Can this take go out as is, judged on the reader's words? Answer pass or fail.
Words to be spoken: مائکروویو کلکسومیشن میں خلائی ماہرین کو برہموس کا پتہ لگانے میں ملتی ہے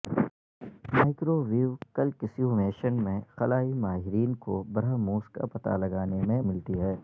pass